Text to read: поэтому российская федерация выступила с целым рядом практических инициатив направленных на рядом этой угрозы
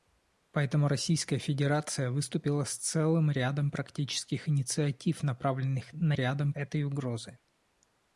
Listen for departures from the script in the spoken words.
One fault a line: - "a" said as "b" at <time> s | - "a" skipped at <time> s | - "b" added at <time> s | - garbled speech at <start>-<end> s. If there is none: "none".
none